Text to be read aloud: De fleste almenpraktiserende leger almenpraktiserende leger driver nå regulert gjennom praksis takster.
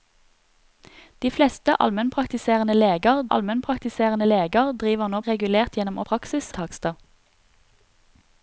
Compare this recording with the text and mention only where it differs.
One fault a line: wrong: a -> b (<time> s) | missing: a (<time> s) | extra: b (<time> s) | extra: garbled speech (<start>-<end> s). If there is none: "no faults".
no faults